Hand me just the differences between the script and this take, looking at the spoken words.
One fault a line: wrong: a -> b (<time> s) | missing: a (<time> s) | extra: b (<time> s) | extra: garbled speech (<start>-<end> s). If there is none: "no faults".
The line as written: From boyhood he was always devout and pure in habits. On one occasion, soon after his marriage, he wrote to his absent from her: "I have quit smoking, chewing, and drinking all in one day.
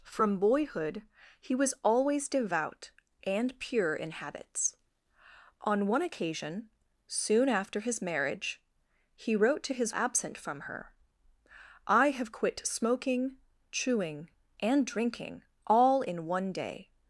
no faults